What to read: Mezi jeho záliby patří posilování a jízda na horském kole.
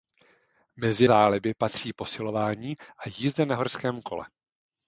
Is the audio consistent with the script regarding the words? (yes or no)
no